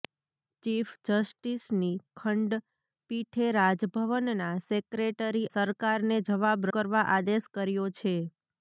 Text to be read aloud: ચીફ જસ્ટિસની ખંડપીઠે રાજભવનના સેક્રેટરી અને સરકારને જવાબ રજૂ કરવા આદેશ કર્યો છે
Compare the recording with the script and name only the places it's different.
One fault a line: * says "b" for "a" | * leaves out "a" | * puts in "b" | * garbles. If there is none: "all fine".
* leaves out "અને"
* leaves out "રજૂ"